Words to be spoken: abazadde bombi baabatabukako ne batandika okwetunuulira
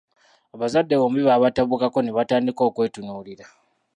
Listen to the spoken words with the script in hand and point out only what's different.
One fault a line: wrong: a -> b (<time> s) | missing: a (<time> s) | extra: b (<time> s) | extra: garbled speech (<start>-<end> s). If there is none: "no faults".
no faults